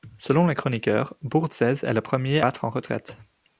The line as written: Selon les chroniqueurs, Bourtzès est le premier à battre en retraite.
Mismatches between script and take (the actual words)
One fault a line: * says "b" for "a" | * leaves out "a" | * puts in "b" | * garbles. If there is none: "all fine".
* leaves out "à"